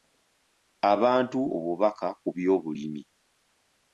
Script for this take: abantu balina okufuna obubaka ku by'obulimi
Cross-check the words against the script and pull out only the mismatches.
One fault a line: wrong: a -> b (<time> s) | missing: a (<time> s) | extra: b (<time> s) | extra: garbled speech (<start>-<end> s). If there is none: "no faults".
missing: balina okufuna (1.4 s)